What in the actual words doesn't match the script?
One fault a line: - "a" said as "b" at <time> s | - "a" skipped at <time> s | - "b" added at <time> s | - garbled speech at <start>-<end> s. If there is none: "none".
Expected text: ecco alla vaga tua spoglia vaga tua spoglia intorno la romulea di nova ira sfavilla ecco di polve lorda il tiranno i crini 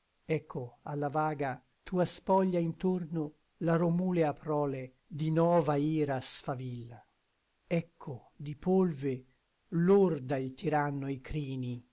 - "vaga tua spoglia" skipped at 2.6 s
- "prole" added at 4.3 s